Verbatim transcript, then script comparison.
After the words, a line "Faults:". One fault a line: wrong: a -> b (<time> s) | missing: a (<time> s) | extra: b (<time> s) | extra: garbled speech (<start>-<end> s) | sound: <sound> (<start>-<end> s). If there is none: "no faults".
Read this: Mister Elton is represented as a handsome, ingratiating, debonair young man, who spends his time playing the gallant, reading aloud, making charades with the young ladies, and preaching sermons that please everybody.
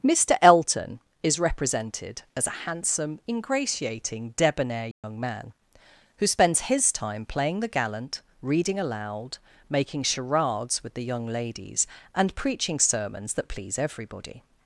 Mister Elton is represented as a handsome, ingratiating, debonair young man, who spends his time playing the gallant, reading aloud, making charades with the young ladies, and preaching sermons that please everybody.
Faults:
sound: dropout (4.9-5.0 s)